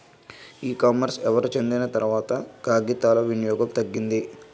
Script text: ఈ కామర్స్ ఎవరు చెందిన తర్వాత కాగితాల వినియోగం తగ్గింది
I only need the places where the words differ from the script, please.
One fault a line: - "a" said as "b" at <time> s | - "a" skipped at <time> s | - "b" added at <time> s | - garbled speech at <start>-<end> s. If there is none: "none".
none